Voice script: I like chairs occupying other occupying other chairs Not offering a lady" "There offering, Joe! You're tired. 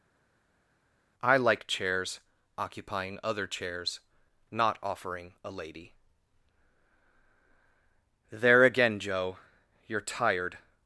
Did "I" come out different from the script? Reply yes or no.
no